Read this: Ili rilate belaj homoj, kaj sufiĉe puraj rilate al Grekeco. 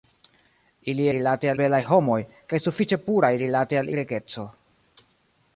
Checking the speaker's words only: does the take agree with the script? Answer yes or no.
yes